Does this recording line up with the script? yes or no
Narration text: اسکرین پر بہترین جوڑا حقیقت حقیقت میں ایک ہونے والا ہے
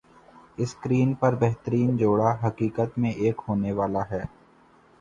no